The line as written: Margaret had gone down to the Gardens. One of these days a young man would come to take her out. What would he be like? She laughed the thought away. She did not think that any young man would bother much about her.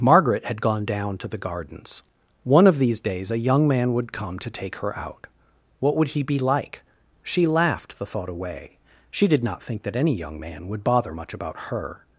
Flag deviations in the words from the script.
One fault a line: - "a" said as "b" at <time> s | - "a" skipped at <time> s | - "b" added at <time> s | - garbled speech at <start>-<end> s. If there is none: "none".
none